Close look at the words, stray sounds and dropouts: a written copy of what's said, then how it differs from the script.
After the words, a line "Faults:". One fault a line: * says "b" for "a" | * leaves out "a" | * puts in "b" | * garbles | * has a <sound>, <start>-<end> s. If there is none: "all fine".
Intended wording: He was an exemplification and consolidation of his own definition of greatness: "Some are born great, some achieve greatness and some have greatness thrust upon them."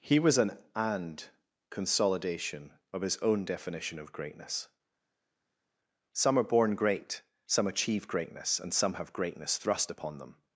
He was an and consolidation of his own definition of greatness: "Some are born great, some achieve greatness and some have greatness thrust upon them."
Faults:
* leaves out "exemplification"